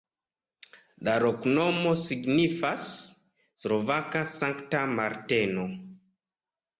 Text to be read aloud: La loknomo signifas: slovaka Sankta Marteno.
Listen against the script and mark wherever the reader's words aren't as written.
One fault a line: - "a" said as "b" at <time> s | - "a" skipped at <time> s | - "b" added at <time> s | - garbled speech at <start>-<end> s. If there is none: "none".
none